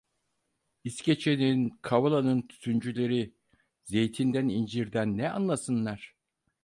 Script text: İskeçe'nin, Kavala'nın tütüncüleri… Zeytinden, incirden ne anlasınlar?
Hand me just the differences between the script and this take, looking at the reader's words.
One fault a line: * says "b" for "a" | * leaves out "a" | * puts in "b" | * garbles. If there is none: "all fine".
all fine